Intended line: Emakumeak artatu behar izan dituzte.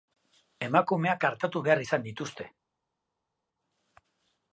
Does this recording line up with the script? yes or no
yes